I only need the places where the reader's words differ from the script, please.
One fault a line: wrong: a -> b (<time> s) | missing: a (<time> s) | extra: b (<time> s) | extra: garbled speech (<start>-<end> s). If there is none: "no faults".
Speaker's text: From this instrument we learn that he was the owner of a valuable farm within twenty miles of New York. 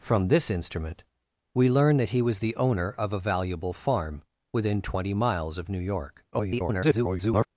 extra: garbled speech (6.3-7.5 s)